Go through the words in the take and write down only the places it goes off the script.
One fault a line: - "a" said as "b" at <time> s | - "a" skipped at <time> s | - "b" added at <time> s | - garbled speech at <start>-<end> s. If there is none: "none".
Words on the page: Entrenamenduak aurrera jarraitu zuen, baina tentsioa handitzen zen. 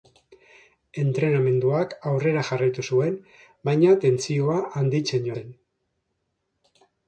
none